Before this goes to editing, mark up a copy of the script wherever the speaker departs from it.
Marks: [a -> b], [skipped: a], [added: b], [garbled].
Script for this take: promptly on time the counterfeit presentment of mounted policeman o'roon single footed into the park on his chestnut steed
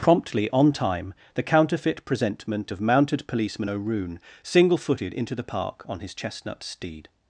promptly on time the counterfeit presentment of mounted policeman o'roon single footed into the park on his chestnut steed